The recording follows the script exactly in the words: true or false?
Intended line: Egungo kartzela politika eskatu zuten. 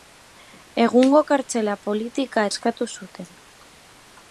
true